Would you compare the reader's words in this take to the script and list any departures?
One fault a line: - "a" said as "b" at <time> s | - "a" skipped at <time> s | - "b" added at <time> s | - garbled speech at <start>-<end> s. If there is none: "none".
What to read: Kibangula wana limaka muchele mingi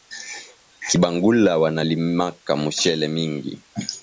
none